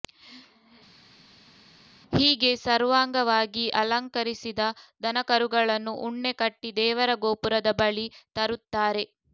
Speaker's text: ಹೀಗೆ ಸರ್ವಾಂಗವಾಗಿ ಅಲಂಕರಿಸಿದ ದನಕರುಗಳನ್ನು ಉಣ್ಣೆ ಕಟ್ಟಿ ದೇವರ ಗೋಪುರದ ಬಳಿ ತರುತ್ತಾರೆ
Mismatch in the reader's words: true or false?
false